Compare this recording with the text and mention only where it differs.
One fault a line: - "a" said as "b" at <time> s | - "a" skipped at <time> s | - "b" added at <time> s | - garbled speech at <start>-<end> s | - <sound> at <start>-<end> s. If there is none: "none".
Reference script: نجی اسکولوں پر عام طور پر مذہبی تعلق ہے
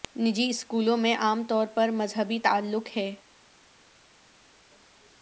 - "پر" said as "میں" at 1.0 s